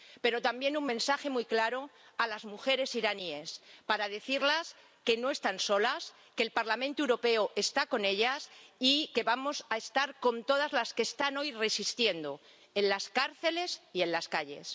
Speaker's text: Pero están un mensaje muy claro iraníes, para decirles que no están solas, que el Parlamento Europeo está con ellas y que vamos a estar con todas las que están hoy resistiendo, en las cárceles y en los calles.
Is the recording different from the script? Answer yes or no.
yes